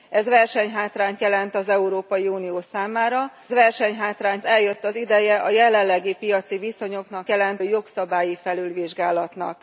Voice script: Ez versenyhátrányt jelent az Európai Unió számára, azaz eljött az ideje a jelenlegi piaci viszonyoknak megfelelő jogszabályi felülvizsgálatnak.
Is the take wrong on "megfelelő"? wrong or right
wrong